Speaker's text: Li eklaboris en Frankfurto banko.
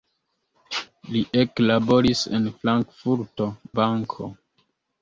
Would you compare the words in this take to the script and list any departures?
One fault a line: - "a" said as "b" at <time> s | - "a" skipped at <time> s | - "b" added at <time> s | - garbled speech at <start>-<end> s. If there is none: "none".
none